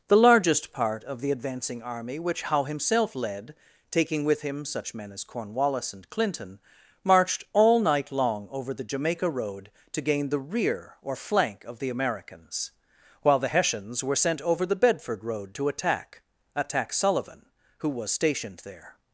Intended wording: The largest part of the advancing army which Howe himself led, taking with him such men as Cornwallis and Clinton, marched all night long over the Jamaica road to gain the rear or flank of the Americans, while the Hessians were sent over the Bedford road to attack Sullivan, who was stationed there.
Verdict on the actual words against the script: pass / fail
fail